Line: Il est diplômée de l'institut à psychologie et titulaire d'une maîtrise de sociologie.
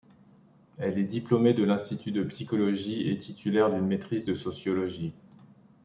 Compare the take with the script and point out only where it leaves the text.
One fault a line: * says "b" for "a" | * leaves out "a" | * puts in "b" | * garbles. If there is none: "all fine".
* says "Elle" for "Il"
* says "de" for "à"